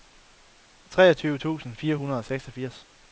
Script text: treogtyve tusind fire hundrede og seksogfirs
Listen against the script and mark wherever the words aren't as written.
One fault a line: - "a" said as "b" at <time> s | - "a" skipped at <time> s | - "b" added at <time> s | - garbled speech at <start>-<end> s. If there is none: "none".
none